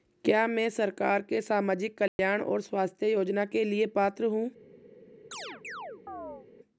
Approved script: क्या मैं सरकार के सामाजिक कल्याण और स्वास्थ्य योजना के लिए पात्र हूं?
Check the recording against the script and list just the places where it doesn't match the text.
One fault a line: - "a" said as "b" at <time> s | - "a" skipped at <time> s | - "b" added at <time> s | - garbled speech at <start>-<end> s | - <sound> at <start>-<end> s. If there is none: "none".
- dropout at 2.1-2.2 s
- chirp at 5.3-6.5 s